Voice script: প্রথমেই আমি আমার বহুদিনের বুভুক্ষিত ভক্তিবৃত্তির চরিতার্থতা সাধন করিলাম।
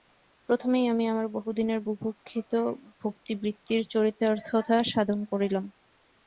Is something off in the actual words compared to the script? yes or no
no